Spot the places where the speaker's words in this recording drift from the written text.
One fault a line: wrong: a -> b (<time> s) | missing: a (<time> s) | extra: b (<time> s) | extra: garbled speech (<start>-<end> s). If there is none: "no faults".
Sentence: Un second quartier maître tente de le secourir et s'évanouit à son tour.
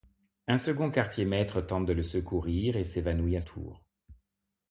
missing: son (3.4 s)